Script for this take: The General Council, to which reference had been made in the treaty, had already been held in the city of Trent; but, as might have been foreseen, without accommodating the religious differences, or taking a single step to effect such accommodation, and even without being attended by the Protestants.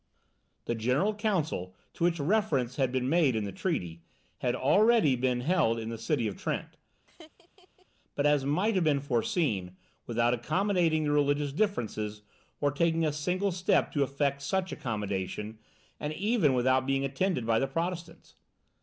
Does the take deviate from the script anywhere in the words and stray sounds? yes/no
yes